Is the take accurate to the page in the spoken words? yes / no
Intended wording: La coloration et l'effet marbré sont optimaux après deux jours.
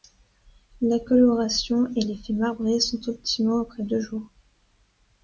yes